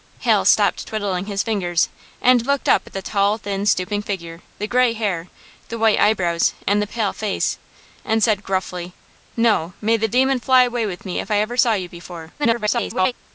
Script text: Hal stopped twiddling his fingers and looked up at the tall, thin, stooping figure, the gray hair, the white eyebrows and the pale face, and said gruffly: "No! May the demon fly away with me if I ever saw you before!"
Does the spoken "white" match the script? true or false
true